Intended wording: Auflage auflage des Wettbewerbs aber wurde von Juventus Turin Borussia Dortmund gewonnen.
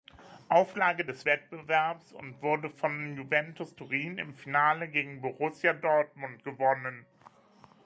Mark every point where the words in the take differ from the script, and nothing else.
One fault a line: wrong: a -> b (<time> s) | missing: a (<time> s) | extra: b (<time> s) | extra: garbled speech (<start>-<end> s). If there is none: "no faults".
missing: auflage (1.1 s)
wrong: aber -> und (2.1 s)
extra: im Finale gegen (4.2 s)